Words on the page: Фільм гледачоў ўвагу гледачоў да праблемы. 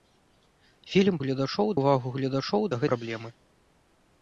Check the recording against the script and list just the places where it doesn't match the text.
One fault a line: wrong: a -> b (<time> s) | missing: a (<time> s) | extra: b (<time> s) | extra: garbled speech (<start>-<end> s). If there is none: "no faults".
no faults